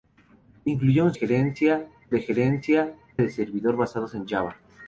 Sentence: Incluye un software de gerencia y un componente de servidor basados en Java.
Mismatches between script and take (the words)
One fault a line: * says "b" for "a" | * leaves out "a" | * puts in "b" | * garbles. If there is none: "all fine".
* says "gerencia" for "software"
* leaves out "y un componente"